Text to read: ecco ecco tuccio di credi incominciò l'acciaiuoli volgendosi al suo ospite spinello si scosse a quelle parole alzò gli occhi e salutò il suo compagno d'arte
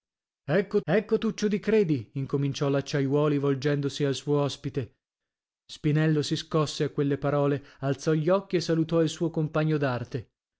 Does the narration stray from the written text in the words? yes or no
no